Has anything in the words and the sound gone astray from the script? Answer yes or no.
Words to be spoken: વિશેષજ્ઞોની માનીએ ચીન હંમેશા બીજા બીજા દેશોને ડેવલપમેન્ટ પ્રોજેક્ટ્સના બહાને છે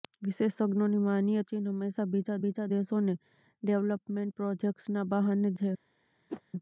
yes